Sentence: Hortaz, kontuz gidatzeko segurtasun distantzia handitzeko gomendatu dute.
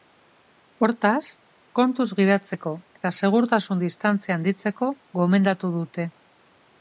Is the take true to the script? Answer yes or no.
no